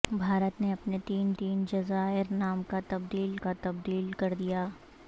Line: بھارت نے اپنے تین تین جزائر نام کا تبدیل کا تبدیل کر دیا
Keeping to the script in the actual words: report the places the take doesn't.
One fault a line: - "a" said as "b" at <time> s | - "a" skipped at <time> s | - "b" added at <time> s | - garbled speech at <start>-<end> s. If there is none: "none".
none